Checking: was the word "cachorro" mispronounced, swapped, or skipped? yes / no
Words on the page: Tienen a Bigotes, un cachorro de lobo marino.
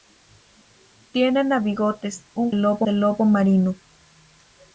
yes